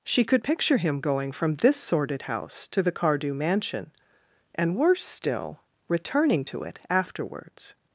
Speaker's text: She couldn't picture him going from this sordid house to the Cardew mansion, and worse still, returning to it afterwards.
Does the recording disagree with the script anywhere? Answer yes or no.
yes